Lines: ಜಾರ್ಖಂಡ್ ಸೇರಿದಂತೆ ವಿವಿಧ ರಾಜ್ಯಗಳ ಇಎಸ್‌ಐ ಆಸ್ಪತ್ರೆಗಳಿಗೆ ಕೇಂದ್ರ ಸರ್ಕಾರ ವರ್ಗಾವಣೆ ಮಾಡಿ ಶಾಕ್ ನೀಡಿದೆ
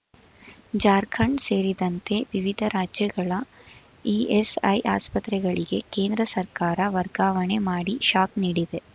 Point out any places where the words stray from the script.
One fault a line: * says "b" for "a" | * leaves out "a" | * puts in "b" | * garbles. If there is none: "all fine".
all fine